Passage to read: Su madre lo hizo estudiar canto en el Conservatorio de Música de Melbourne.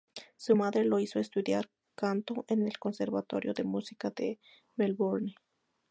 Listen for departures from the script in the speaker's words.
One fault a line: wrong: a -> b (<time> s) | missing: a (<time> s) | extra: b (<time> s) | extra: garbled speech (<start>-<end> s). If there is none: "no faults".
no faults